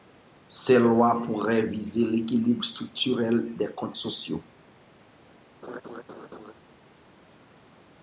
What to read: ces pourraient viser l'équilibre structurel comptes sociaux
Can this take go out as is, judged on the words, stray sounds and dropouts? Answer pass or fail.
fail